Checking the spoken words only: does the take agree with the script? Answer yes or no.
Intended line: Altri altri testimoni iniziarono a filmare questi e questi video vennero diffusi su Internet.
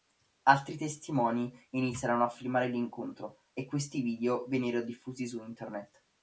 no